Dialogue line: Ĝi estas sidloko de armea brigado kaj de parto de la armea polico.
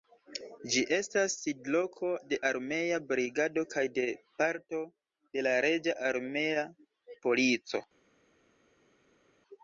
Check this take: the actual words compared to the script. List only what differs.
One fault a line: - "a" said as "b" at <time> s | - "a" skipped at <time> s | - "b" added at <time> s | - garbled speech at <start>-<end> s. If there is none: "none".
- "reĝa" added at 5.7 s